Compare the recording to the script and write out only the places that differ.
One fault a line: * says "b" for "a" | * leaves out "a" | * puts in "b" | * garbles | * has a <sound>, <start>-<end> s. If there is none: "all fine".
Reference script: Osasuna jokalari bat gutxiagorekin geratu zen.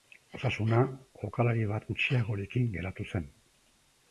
all fine